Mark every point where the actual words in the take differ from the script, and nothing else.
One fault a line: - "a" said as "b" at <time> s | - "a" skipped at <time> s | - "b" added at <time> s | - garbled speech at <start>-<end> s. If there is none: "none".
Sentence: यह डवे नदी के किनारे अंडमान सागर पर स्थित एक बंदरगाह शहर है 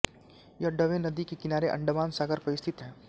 - "एक बंदरगाह शहर" skipped at 2.8 s